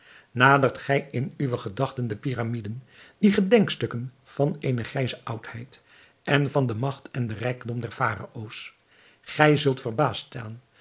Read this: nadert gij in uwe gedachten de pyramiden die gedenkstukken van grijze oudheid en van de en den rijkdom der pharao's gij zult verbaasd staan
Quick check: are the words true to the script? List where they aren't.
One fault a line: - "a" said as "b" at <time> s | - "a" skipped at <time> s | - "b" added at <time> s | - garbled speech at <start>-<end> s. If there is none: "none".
- "eene" added at 4.6 s
- "magt" added at 6.8 s